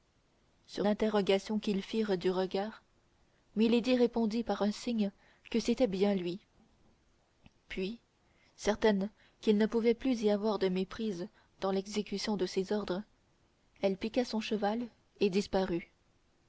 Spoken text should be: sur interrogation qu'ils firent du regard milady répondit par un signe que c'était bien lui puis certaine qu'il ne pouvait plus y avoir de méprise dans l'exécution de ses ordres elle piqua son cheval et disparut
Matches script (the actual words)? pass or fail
pass